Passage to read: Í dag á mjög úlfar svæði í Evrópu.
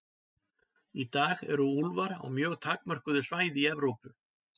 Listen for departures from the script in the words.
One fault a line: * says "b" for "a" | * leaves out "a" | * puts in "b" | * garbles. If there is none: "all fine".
* puts in "eru úlfar"
* says "takmörkuðu" for "úlfar"